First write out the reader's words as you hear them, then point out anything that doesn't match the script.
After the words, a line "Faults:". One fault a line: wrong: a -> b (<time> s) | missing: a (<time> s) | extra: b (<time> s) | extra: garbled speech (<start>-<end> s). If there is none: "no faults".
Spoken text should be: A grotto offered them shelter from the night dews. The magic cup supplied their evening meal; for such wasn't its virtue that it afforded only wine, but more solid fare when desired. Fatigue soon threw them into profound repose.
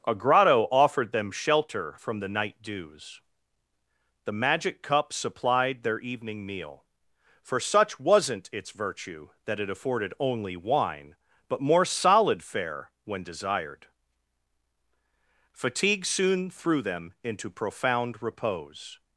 A grotto offered them shelter from the night dews. The magic cup supplied their evening meal; for such wasn't its virtue that it afforded only wine, but more solid fare when desired. Fatigue soon threw them into profound repose.
Faults:
no faults